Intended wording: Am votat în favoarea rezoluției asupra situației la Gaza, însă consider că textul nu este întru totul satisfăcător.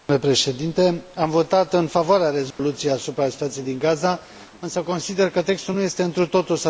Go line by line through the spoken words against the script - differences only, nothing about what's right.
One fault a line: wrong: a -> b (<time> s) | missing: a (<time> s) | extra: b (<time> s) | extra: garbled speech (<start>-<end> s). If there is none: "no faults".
wrong: la -> din (3.6 s)